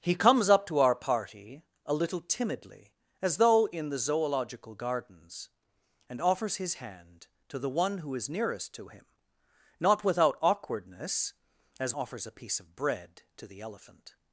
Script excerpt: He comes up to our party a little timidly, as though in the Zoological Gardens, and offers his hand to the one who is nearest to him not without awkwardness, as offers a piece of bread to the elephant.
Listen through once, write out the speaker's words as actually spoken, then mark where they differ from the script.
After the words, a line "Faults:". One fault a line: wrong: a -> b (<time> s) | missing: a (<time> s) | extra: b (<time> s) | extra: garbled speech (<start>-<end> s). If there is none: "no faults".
He comes up to our party a little timidly, as though in the Zoological Gardens, and offers his hand to the one who is nearest to him not without awkwardness, as offers a piece of bread to the elephant.
Faults:
no faults